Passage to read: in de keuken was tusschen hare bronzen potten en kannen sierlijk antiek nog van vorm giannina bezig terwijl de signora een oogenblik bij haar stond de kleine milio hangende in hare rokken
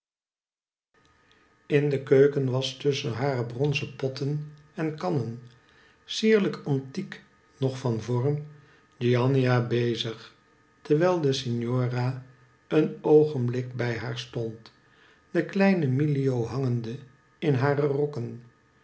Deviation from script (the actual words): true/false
false